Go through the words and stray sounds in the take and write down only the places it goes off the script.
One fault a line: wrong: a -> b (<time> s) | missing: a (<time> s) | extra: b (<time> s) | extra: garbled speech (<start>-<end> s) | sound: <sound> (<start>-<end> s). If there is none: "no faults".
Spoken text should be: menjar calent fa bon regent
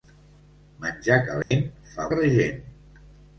sound: dropout (1.4-1.5 s)
missing: bon (2.1 s)